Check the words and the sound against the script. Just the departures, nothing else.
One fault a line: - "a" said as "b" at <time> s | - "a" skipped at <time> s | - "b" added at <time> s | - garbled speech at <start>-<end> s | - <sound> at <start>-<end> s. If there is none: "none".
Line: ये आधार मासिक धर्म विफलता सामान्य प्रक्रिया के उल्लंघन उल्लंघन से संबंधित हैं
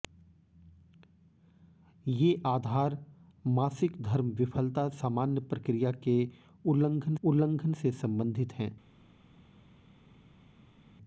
none